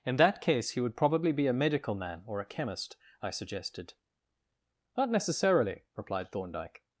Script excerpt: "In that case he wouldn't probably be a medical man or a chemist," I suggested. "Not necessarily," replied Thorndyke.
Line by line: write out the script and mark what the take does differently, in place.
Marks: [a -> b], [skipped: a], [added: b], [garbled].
"In that case he [wouldn't -> would] probably be a medical man or a chemist," I suggested. "Not necessarily," replied Thorndyke.